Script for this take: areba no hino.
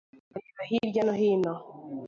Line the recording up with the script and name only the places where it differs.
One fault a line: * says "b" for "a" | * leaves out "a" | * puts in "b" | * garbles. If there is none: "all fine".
* puts in "hirya"